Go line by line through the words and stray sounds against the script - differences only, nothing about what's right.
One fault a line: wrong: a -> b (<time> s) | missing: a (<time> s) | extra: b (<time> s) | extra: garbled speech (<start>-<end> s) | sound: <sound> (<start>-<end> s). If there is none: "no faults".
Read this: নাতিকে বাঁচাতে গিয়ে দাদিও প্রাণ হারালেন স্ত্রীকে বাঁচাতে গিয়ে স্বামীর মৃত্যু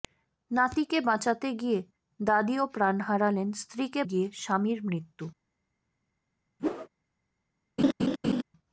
missing: বাঁচাতে (4.0 s)
sound: whoosh (6.6-6.9 s)
sound: laugh (7.8-8.4 s)